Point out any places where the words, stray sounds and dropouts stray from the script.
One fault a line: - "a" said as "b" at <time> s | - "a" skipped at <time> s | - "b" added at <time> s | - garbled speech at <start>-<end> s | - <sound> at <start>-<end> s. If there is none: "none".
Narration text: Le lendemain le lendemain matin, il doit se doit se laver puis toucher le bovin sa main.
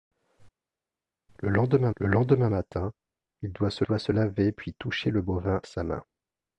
none